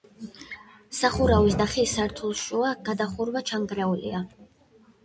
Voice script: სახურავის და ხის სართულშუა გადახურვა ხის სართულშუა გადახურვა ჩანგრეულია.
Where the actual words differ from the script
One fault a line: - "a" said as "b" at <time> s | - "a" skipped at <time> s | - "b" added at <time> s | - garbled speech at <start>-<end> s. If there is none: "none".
- "ხის სართულშუა გადახურვა" skipped at 3.5 s